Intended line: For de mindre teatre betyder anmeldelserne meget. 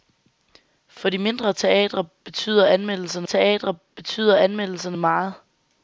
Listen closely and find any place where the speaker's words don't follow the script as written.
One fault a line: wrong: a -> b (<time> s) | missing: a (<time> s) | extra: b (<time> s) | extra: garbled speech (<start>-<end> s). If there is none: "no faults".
extra: teatre betyder anmeldelserne (3.2 s)